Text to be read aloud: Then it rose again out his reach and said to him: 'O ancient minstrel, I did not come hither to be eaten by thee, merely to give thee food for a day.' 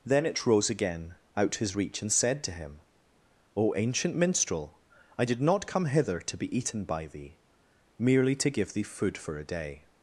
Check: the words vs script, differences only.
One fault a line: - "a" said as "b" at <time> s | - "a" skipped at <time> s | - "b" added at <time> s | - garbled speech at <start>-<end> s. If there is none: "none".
none